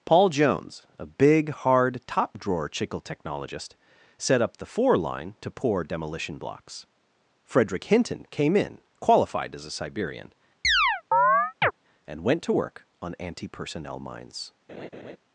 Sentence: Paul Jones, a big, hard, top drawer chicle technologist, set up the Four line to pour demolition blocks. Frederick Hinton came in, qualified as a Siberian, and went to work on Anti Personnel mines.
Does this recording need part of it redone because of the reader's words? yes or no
no